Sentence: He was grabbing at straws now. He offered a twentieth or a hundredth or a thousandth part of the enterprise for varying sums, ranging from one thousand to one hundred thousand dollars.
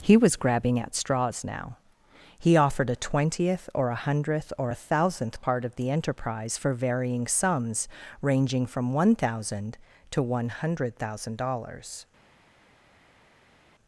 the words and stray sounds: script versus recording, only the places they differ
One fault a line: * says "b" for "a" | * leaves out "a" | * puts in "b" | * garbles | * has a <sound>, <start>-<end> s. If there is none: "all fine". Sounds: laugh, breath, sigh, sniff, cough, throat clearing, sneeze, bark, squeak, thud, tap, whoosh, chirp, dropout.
all fine